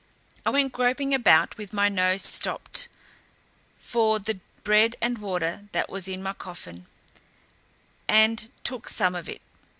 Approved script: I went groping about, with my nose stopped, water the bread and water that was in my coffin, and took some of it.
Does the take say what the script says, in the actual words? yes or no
no